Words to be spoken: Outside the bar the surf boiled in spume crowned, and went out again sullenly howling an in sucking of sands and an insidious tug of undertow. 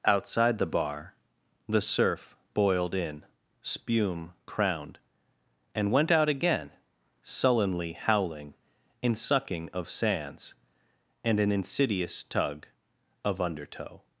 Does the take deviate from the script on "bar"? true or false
false